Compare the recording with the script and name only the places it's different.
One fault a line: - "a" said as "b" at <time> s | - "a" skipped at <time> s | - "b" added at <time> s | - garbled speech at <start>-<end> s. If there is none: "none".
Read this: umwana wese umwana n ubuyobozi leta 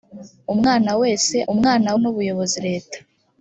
none